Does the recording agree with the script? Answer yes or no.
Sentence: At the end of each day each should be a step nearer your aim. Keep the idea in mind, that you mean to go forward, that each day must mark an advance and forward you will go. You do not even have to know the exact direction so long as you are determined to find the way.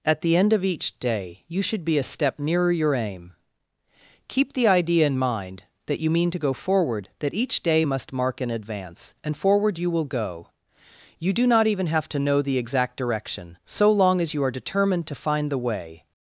no